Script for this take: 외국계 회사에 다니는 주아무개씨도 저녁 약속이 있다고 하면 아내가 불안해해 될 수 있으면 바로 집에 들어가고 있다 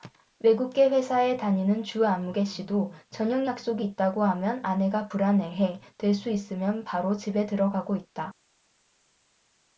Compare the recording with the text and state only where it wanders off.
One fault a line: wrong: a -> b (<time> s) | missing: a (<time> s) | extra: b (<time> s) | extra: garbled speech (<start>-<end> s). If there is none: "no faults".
no faults